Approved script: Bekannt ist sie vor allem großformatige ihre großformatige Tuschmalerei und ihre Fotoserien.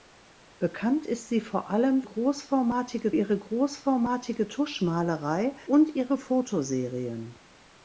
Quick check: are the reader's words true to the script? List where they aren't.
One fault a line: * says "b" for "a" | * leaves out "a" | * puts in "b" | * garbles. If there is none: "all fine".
all fine